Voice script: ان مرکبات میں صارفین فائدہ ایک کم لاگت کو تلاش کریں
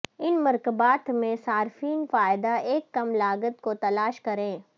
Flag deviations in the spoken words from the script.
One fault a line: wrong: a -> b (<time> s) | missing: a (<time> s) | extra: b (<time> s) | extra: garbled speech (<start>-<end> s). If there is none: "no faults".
no faults